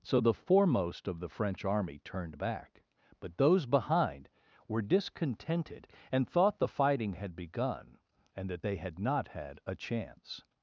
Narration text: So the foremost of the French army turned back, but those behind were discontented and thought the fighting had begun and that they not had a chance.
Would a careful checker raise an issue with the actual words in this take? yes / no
yes